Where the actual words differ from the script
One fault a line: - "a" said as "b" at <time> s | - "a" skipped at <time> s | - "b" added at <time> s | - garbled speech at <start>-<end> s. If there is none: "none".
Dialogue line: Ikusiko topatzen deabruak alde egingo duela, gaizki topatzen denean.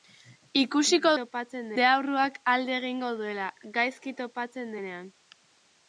none